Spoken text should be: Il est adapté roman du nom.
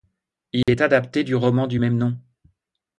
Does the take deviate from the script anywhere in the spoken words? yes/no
yes